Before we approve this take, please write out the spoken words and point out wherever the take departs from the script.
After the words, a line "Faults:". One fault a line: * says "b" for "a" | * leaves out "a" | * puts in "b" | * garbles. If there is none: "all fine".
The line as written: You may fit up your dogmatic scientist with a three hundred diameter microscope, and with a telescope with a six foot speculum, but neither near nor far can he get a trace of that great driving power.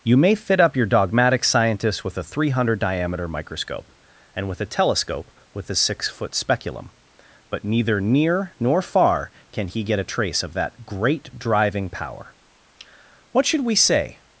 You may fit up your dogmatic scientist with a three hundred diameter microscope, and with a telescope with a six foot speculum, but neither near nor far can he get a trace of that great driving power. What should we say
Faults:
* puts in "What should we say"